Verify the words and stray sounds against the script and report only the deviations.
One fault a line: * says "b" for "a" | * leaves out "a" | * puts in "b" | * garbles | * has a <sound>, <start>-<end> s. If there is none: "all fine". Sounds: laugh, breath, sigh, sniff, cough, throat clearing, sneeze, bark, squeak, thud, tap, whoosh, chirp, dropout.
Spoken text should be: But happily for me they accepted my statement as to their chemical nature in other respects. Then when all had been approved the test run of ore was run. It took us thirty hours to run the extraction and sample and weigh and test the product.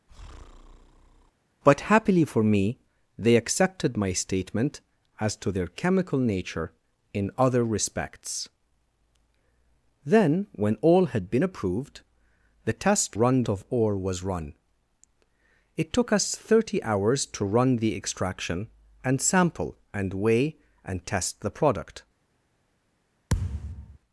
* has a breath, 0.1-1.3 s
* has a thud, 23.3-24.0 s